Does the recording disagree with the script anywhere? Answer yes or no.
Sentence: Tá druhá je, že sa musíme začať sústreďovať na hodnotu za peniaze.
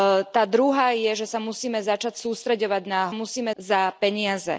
yes